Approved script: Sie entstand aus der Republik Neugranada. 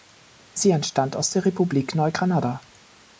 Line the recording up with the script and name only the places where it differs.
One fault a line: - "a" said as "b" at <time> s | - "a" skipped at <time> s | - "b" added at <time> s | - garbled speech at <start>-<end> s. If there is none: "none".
none